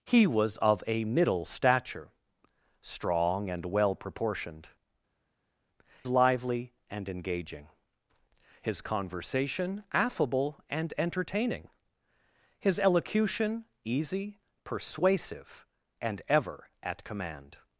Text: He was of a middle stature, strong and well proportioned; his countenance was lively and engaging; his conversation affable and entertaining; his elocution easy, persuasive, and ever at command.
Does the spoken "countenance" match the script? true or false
false